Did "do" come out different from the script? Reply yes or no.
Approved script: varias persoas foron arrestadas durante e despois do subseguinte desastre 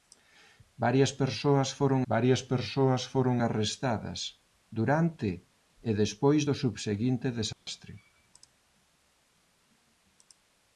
no